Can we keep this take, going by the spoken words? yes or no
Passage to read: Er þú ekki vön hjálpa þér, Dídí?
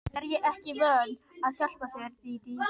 no